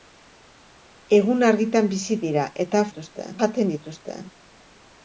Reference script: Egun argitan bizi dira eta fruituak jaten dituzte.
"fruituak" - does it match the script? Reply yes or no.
no